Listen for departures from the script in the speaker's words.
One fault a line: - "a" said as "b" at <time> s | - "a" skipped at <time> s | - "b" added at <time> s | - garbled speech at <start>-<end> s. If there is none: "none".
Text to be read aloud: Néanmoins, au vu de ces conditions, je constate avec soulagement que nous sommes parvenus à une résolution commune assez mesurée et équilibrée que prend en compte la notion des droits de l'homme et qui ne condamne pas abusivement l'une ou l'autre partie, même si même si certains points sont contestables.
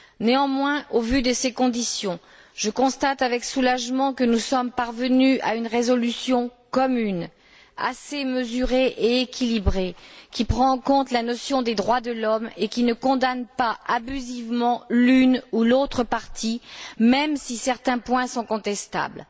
- "que" said as "qui" at 10.3 s
- "même si" skipped at 17.6 s